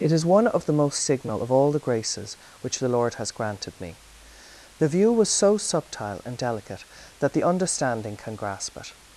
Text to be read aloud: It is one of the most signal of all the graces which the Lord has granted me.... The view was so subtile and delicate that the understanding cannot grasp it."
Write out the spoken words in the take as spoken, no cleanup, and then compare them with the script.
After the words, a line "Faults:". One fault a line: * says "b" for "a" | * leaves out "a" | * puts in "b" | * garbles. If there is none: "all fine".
It is one of the most signal of all the graces which the Lord has granted me.... The view was so subtile and delicate that the understanding can grasp it."
Faults:
* says "can" for "cannot"